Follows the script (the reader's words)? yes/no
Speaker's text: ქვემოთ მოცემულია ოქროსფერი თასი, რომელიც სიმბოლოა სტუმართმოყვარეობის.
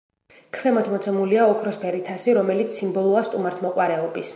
yes